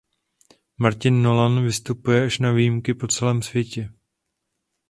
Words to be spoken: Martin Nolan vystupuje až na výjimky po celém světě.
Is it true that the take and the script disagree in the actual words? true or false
false